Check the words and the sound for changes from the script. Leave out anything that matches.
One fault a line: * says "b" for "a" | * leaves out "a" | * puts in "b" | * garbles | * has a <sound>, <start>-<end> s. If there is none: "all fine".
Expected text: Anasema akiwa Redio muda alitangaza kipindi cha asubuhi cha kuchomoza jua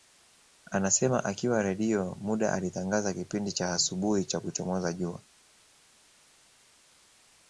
all fine